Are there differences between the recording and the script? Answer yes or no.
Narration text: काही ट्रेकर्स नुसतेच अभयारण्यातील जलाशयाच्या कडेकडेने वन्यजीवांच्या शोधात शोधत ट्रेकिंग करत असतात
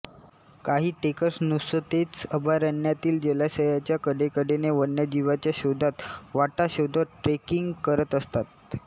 yes